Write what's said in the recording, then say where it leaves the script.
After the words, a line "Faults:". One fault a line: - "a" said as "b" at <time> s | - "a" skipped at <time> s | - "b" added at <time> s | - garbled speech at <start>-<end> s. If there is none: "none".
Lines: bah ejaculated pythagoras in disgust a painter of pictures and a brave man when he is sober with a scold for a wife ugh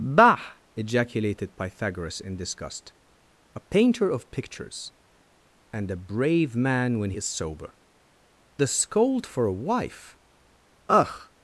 bah ejaculated pythagoras in disgust a painter of pictures and a brave man when is sober a scold for a wife ugh
Faults:
- "he" skipped at 7.1 s
- "with" skipped at 7.7 s